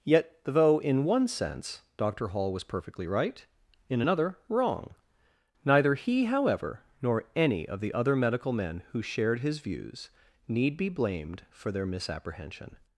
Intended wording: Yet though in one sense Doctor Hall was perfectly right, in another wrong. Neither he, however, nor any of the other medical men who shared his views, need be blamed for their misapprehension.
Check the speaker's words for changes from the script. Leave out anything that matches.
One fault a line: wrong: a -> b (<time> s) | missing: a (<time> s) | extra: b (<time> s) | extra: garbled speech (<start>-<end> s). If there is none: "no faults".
no faults